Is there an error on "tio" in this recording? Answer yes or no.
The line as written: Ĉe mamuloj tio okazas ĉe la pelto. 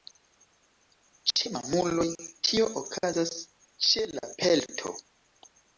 no